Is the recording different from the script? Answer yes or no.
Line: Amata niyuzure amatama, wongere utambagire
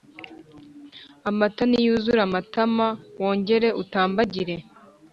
no